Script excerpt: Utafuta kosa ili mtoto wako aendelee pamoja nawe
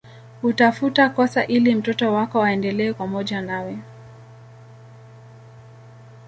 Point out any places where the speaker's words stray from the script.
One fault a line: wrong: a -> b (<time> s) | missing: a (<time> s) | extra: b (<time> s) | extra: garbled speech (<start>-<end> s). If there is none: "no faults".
no faults